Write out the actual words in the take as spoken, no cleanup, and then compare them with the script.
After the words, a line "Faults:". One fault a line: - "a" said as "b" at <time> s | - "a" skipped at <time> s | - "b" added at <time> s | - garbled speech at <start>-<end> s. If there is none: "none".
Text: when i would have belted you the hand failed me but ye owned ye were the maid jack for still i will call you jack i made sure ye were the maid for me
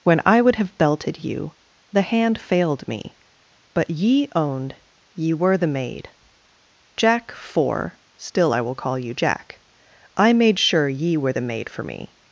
when i would have belted you the hand failed me but ye owned ye were the maid jack for still i will call you jack i made sure ye were the maid for me
Faults:
none